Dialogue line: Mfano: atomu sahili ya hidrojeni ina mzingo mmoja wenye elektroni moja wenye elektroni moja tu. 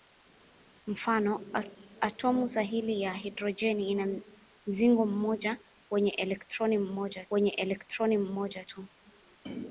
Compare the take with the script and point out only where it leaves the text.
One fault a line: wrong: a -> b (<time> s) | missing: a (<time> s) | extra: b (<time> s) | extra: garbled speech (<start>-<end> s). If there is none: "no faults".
no faults